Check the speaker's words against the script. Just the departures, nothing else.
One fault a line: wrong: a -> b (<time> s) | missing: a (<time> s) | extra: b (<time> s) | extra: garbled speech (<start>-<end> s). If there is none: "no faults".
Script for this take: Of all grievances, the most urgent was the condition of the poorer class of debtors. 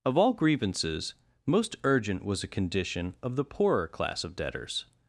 missing: the (1.1 s)
wrong: the -> a (2.4 s)